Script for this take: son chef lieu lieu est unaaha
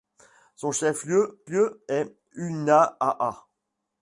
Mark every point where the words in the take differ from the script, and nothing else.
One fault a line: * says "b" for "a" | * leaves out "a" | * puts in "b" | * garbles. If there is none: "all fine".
all fine